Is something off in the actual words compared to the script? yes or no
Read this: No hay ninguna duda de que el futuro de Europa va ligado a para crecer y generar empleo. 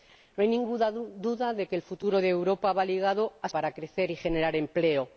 no